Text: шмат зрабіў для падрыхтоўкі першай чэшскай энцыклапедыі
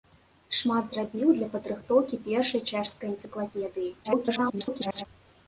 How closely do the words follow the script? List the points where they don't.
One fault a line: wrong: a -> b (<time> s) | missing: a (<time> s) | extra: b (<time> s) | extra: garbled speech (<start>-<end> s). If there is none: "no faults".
extra: garbled speech (4.0-5.1 s)